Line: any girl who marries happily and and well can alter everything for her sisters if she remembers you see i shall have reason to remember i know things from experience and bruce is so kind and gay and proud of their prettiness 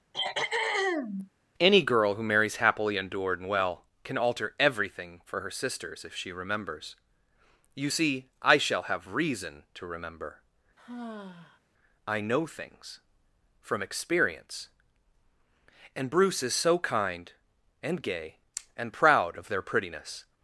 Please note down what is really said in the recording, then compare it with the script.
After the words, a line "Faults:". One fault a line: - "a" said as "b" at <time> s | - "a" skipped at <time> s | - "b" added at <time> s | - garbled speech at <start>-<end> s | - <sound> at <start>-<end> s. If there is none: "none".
any girl who marries happily endured and well can alter everything for her sisters if she remembers you see i shall have reason to remember i know things from experience and bruce is so kind and gay and proud of their prettiness
Faults:
- throat clearing at 0.1-1.3 s
- "and" said as "endured" at 3.0 s
- sigh at 10.8-11.6 s